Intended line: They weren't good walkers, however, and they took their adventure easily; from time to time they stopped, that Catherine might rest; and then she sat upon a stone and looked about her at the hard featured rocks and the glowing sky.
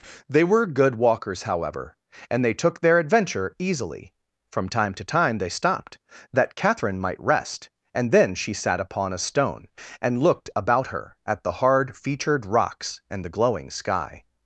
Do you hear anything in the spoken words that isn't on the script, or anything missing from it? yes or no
yes